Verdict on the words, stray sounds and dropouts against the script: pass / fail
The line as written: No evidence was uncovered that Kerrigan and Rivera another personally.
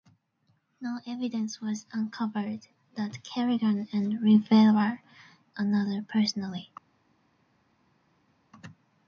pass